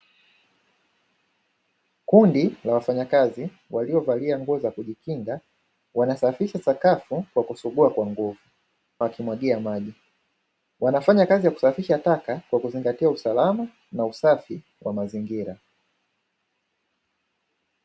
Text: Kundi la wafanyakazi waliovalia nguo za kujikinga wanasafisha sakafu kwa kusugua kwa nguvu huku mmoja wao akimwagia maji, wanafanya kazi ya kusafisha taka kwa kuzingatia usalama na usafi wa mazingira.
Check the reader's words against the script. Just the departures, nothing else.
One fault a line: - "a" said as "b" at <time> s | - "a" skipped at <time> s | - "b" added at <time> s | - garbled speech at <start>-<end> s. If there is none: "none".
- "huku mmoja wao" skipped at 8.4 s